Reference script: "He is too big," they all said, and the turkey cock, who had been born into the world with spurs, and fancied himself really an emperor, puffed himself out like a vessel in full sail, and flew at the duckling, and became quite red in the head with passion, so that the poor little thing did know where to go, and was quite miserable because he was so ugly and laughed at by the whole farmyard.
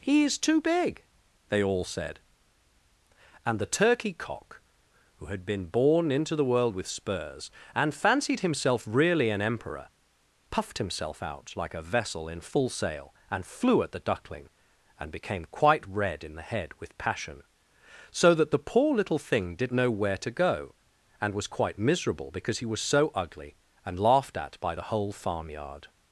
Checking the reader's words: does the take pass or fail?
pass